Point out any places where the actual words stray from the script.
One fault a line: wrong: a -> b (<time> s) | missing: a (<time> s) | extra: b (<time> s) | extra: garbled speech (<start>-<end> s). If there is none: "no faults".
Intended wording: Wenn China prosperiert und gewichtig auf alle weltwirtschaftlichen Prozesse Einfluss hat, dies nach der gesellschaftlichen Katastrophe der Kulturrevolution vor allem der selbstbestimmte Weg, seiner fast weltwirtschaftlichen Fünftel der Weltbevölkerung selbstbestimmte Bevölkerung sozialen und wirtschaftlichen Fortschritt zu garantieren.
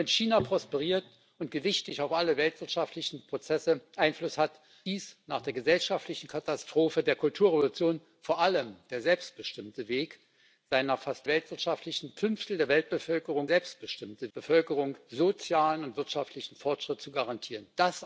no faults